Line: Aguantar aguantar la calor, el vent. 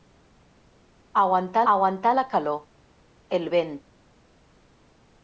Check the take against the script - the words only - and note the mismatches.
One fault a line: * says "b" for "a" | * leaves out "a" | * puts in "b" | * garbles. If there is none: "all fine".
all fine